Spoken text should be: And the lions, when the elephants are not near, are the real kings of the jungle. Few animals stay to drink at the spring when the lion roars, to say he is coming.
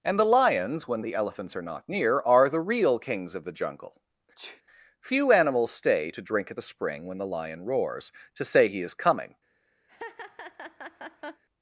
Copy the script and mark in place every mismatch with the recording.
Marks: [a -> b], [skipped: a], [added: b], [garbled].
And the lions, when the elephants are not near, are the real kings of the jungle. Few animals stay to drink at the spring when the lion roars, to say he is coming.